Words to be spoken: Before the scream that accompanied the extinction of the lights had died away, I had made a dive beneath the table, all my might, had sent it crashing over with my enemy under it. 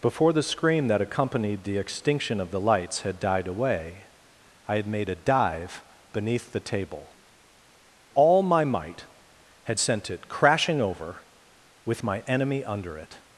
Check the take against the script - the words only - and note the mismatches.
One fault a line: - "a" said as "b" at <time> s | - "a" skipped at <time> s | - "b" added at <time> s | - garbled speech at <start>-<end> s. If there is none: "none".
none